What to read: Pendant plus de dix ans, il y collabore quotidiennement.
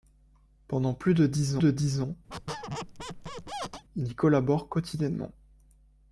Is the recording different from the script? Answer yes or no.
yes